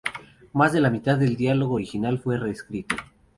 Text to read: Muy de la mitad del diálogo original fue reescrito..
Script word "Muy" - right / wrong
wrong